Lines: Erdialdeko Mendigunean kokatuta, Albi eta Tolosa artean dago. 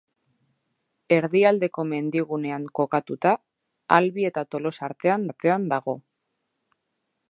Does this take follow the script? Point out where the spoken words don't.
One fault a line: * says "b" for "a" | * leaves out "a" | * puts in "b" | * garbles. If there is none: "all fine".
* puts in "artean"